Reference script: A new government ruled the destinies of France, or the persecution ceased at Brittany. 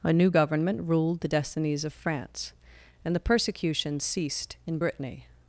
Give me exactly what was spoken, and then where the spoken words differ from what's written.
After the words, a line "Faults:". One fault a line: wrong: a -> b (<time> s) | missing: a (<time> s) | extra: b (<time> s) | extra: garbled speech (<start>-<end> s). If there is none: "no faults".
A new government ruled the destinies of France, and the persecution ceased in Brittany.
Faults:
wrong: or -> and (3.0 s)
wrong: at -> in (4.7 s)